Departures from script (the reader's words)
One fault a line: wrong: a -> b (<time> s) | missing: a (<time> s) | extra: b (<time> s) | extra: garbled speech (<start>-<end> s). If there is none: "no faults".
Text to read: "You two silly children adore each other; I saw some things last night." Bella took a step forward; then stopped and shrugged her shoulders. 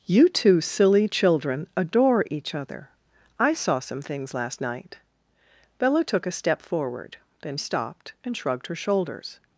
no faults